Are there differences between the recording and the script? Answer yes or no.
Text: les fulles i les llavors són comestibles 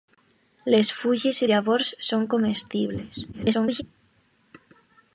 yes